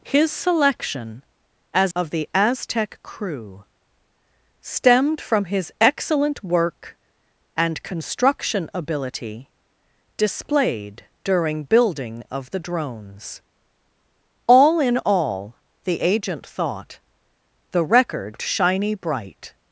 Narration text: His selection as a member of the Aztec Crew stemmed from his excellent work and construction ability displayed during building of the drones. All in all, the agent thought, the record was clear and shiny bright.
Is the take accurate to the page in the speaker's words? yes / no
no